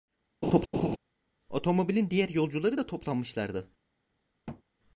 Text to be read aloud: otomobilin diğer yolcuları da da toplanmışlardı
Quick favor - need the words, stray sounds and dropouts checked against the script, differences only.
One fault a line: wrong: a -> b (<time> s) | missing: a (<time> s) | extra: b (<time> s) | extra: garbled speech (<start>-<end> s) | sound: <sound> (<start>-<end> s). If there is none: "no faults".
sound: laugh (0.4-1.0 s)
missing: da (2.9 s)
sound: thud (4.5-4.6 s)